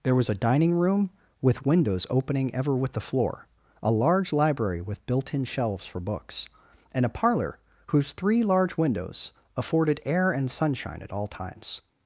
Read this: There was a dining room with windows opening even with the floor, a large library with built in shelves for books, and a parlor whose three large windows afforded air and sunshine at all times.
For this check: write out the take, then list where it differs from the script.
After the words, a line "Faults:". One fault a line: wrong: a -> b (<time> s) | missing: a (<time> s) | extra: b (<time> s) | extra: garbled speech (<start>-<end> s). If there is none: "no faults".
There was a dining room with windows opening ever with the floor, a large library with built in shelves for books, and a parlor whose three large windows afforded air and sunshine at all times.
Faults:
wrong: even -> ever (2.5 s)